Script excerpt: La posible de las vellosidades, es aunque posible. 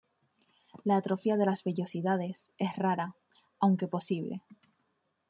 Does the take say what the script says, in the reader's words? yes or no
no